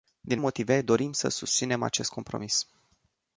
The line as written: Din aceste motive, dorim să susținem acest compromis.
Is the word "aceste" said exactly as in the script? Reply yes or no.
no